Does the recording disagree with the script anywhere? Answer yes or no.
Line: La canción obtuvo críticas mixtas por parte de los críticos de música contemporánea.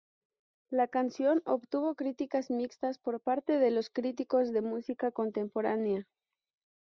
no